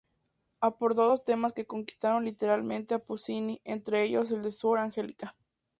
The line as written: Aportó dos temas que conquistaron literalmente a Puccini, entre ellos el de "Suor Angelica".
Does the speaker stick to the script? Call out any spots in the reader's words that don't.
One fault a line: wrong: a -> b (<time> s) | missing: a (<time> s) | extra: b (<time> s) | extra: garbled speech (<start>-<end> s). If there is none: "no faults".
no faults